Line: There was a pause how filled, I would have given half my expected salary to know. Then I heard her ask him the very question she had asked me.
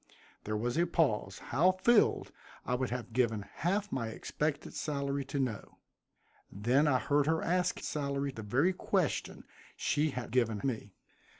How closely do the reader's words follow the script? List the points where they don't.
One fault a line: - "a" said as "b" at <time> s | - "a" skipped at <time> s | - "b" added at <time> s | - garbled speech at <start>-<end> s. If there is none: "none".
- "him" said as "salary" at 7.8 s
- "asked" said as "given" at 10.3 s